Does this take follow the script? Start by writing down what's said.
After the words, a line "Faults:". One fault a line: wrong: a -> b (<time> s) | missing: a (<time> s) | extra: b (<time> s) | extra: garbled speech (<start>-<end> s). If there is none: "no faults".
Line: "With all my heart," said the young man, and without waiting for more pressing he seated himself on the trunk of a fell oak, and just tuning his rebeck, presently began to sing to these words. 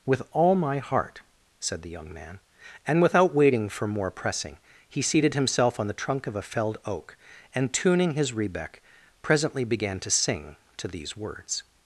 "With all my heart," said the young man, and without waiting for more pressing he seated himself on the trunk of a felled oak, and tuning his rebeck, presently began to sing to these words.
Faults:
wrong: fell -> felled (6.4 s)
missing: just (7.7 s)